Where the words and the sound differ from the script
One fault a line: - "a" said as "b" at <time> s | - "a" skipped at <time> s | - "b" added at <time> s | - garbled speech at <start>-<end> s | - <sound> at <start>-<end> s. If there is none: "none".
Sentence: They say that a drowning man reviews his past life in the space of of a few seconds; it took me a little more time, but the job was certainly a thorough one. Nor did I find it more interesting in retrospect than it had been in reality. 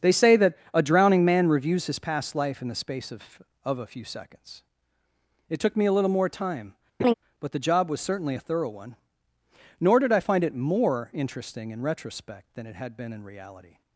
- laugh at 7.0-7.1 s